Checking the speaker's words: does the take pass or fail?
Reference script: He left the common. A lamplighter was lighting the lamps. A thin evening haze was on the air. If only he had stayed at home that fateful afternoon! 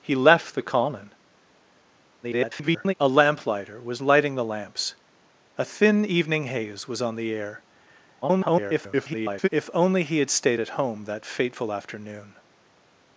fail